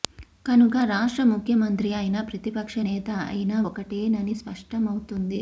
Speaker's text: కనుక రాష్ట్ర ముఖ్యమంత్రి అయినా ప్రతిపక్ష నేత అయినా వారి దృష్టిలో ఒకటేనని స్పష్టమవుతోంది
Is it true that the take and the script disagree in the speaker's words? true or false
true